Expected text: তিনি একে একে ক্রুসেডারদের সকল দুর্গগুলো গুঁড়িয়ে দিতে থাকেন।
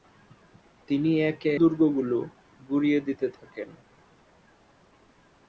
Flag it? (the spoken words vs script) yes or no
yes